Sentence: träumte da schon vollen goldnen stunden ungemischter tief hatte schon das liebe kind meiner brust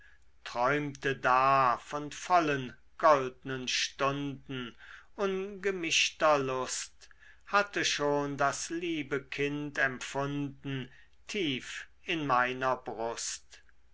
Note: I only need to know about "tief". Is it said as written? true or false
false